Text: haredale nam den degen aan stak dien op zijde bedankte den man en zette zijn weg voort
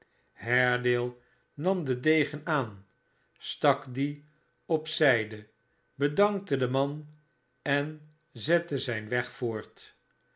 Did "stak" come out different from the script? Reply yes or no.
no